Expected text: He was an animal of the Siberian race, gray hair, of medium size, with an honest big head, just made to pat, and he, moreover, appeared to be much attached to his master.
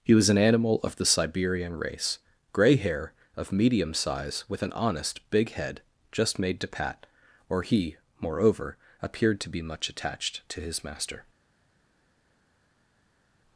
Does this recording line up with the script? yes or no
no